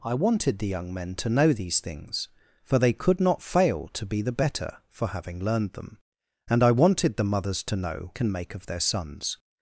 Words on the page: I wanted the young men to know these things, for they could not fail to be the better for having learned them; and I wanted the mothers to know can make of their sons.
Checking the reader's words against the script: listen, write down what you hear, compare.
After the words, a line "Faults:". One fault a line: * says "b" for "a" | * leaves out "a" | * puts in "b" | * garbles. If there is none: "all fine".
I wanted the young men to know these things, for they could not fail to be the better for having learned them; and I wanted the mothers to know can make of their sons.
Faults:
all fine